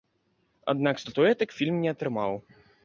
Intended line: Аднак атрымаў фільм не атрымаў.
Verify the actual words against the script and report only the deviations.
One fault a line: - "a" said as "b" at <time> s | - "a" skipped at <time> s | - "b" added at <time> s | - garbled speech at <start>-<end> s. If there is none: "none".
- "атрымаў" said as "статуэтак" at 1.0 s